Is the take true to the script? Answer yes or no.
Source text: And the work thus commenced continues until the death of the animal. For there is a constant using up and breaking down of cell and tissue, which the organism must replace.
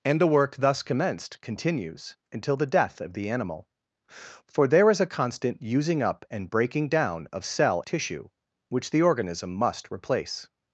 no